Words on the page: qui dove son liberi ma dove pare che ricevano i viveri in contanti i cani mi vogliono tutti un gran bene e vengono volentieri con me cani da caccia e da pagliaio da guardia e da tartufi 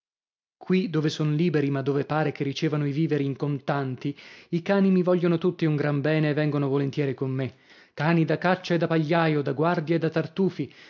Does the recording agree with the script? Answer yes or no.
yes